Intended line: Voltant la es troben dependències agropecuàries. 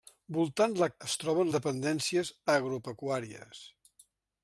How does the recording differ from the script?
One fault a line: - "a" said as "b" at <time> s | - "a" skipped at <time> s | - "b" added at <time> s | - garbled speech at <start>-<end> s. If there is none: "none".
none